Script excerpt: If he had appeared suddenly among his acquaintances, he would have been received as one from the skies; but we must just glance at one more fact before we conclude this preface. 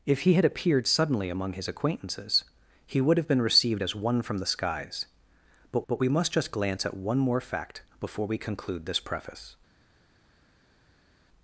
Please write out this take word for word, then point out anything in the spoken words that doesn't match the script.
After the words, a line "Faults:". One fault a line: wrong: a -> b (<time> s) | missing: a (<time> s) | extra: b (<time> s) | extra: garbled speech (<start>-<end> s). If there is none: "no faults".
If he had appeared suddenly among his acquaintances, he would have been received as one from the skies; but but we must just glance at one more fact before we conclude this preface.
Faults:
extra: but (5.9 s)